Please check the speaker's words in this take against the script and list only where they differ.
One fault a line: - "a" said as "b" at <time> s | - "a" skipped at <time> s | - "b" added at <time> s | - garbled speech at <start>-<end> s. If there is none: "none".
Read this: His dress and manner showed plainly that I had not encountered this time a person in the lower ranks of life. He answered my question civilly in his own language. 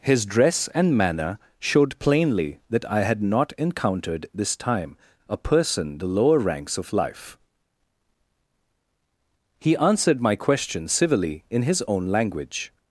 - "in" skipped at 6.0 s